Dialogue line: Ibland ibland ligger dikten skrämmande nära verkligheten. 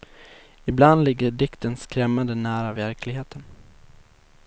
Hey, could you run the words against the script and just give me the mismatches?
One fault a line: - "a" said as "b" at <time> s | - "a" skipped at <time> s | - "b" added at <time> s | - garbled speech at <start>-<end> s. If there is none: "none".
- "ibland" skipped at 1.0 s